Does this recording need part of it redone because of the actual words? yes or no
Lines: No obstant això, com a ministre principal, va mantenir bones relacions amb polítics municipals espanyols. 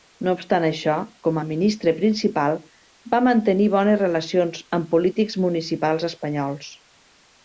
no